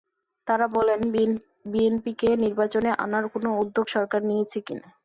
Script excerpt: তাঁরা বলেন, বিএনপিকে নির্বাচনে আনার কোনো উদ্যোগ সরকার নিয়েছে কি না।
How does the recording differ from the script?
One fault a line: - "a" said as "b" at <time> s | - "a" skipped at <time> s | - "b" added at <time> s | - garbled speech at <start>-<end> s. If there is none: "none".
none